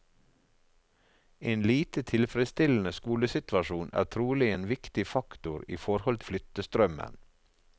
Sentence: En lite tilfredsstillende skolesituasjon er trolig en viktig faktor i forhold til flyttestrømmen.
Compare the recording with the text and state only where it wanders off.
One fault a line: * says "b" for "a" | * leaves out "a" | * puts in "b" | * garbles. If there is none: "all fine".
* leaves out "til"